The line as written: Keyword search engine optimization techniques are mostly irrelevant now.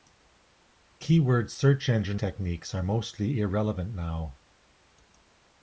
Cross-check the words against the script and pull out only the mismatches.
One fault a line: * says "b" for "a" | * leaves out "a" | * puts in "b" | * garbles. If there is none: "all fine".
* leaves out "optimization"